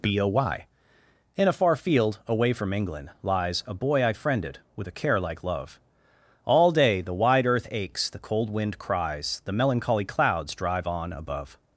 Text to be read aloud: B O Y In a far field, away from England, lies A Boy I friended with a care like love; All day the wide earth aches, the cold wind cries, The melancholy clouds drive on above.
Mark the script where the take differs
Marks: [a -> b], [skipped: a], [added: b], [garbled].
B O Y In a far field, away from England, lies A Boy I friended with a care like love; All day the wide earth aches, the cold wind cries, The melancholy clouds drive on above.